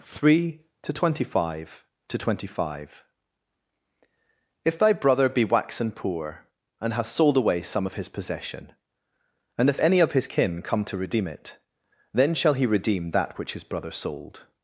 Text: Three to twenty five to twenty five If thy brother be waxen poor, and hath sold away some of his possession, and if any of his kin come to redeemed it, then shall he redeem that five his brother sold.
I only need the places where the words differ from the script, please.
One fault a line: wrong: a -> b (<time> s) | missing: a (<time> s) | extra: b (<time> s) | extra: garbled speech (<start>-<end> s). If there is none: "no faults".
wrong: redeemed -> redeem (11.0 s)
wrong: five -> which (13.4 s)